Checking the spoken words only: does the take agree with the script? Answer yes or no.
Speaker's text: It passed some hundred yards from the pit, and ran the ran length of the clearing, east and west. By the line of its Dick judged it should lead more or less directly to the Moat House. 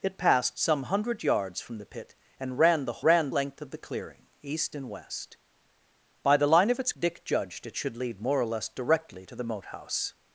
yes